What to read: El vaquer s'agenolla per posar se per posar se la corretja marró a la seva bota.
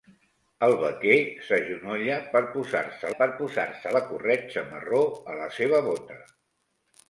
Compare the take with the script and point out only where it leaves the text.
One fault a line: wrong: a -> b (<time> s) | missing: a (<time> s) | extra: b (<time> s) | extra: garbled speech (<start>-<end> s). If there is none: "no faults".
no faults